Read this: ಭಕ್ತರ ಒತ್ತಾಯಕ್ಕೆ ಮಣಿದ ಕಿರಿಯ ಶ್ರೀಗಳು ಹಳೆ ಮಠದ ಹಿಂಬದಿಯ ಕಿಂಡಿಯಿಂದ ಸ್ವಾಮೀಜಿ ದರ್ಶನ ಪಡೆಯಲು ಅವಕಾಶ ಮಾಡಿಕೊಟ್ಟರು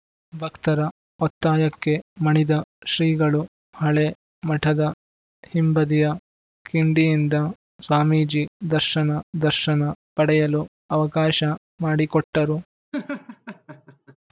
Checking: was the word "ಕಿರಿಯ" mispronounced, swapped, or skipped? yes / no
yes